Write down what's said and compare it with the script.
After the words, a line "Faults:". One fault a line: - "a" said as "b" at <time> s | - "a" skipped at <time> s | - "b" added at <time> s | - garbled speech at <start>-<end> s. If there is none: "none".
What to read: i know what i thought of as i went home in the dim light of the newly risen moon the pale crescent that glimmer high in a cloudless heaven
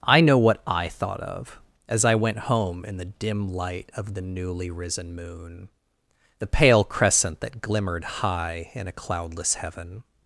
i know what i thought of as i went home in the dim light of the newly risen moon the pale crescent that glimmered high in a cloudless heaven
Faults:
- "glimmer" said as "glimmered" at 7.6 s